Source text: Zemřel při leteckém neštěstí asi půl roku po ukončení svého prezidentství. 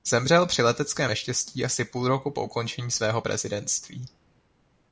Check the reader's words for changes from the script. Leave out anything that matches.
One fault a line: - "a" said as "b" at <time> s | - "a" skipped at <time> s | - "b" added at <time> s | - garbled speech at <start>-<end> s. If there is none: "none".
none